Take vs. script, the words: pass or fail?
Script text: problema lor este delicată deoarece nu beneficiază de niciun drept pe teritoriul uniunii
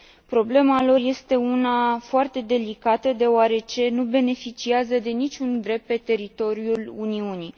fail